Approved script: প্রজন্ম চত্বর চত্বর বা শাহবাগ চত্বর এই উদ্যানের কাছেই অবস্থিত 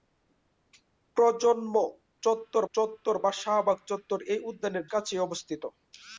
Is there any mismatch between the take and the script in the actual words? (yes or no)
no